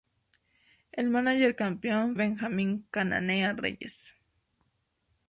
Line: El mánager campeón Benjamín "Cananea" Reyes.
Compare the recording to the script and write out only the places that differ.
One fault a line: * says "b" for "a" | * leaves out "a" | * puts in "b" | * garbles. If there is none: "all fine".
all fine